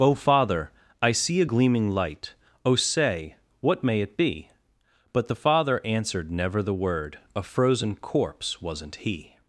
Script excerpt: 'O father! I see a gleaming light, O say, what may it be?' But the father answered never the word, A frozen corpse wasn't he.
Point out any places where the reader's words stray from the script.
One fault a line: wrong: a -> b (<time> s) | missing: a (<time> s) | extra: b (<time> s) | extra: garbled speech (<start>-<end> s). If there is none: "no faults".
no faults